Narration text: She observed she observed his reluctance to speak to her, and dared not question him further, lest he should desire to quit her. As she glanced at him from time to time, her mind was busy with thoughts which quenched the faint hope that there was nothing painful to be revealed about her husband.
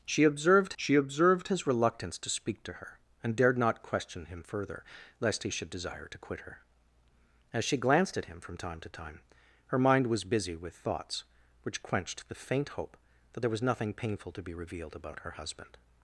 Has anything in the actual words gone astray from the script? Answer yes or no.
no